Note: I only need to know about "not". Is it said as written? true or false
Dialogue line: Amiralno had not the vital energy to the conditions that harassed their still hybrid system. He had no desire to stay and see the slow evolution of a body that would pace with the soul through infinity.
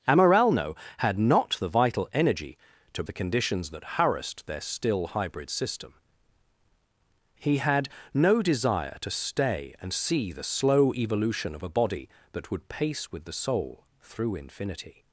true